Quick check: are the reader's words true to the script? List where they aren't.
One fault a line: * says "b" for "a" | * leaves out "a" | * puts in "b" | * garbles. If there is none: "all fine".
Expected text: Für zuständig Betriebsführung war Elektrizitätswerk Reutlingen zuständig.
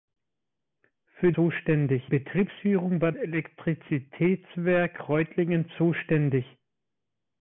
all fine